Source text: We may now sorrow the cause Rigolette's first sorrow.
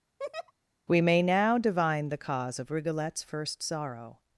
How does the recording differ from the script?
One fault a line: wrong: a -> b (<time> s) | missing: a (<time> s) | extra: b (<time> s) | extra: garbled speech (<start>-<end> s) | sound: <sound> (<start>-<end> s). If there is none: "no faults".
sound: laugh (0.2-0.5 s)
wrong: sorrow -> divine (1.6 s)
extra: of (2.6 s)